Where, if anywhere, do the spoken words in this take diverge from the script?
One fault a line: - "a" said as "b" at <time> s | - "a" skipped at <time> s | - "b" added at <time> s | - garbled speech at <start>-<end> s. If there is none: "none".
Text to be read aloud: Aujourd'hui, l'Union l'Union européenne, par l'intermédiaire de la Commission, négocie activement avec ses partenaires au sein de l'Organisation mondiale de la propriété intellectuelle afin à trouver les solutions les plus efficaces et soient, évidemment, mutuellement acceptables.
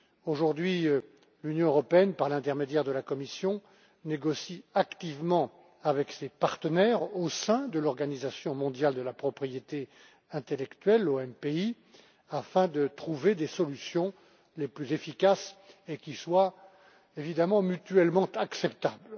- "l'Union" skipped at 1.7 s
- "à" said as "de" at 12.7 s
- "qui" added at 16.0 s